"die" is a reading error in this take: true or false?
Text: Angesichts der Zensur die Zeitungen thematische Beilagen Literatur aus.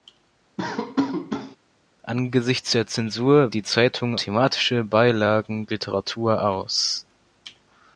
false